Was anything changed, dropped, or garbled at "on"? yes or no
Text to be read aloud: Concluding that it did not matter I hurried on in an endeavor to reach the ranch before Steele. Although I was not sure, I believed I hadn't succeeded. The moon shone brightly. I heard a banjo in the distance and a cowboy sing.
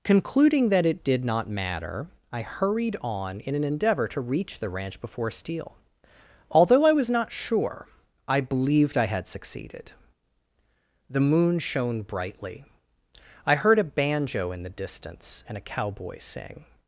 no